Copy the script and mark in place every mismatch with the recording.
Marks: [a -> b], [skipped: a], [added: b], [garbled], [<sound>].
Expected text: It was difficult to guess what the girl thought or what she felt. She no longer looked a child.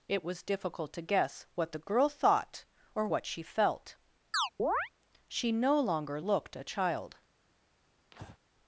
It was difficult to guess what the girl thought or what she felt. [chirp] She no longer looked a child. [breath]